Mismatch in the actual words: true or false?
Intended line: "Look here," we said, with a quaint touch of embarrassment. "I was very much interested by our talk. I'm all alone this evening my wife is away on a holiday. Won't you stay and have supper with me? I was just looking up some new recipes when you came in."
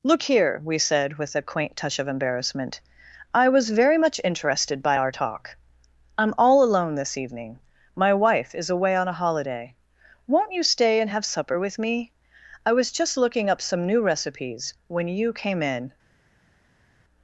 false